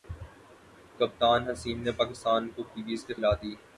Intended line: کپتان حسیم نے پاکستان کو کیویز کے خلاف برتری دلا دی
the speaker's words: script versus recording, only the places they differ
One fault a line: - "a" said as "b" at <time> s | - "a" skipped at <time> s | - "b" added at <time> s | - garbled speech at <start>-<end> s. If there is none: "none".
- "خلاف برتری" skipped at 3.1 s